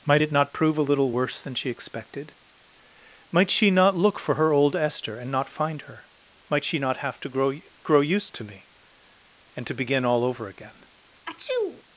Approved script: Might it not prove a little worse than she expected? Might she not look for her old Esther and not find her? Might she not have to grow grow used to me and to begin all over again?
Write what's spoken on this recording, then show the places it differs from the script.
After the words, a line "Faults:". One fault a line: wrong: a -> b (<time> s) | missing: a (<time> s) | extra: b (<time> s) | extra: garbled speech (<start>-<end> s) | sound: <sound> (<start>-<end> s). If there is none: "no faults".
Might it not prove a little worse than she expected? Might she not look for her old Esther and not find her? Might she not have to grow grow used to me and to begin all over again?
Faults:
sound: sneeze (11.2-11.8 s)